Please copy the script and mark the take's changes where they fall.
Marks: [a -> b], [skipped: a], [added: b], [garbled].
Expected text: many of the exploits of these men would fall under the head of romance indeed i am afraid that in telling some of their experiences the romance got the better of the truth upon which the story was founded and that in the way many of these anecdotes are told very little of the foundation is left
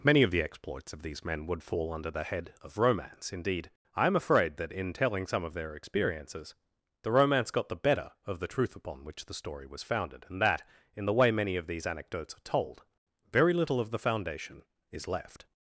many of the exploits of these men would fall under the head of romance indeed i am afraid that in telling some of their experiences the romance got the better of the truth upon which the story was founded and that in the way many of these anecdotes are told very little of the foundation is left